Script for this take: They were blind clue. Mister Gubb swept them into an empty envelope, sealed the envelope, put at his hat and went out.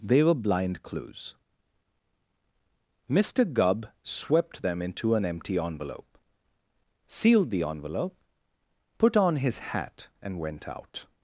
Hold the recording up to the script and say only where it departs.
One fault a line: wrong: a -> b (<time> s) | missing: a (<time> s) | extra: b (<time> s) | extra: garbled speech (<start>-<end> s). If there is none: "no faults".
wrong: clue -> clues (0.8 s)
wrong: at -> on (9.2 s)